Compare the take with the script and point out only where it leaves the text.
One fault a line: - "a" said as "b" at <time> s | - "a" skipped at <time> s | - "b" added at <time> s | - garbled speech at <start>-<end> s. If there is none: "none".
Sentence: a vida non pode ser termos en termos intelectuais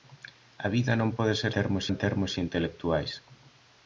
none